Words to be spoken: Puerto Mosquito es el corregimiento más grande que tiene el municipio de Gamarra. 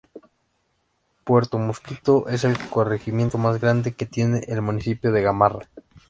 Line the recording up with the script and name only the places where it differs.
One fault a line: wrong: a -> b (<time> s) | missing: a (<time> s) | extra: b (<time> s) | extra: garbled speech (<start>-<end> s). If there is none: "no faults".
no faults